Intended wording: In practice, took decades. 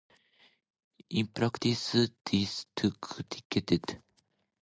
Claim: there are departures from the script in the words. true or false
true